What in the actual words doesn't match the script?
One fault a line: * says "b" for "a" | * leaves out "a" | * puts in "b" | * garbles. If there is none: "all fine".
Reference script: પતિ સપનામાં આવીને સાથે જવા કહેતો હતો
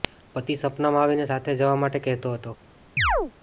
* puts in "માટે"